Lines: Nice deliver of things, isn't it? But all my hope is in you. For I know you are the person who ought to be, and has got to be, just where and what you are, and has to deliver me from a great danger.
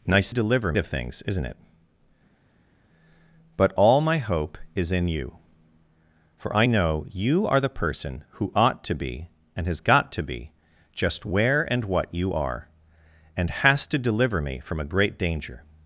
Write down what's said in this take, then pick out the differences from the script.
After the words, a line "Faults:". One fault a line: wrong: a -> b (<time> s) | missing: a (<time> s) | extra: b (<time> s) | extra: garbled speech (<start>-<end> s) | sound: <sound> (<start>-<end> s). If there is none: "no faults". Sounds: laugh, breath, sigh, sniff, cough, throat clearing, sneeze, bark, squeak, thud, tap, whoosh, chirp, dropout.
Nice deliver of things, isn't it? But all my hope is in you. For I know you are the person who ought to be, and has got to be, just where and what you are, and has to deliver me from a great danger.
Faults:
no faults